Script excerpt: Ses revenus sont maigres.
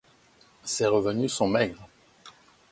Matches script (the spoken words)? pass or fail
pass